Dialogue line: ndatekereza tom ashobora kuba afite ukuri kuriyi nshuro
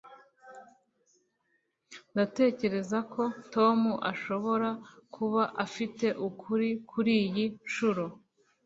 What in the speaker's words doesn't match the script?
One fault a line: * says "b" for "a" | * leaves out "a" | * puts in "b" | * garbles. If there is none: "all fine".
* puts in "ko"